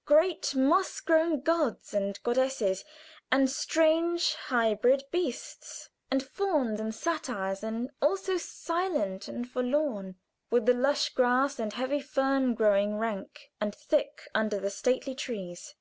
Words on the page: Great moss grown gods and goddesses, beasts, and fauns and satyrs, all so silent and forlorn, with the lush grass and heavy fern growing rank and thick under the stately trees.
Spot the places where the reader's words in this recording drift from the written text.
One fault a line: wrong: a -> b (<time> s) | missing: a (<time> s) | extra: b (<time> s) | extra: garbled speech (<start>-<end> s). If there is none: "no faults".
extra: and strange hybrid (3.3 s)
extra: and (7.6 s)